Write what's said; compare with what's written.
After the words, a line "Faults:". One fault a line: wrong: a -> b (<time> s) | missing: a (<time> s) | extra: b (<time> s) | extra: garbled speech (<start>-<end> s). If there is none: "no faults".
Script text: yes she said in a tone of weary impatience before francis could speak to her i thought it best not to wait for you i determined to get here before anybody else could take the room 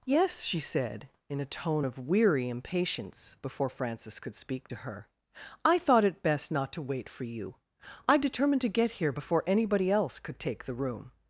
yes she said in a tone of weary impatience before francis could speak to her i thought it best not to wait for you i determined to get here before anybody else could take the room
Faults:
no faults